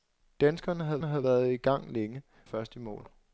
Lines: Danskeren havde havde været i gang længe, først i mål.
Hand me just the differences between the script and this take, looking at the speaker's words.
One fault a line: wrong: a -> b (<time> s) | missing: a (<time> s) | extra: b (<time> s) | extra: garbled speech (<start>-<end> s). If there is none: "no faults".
no faults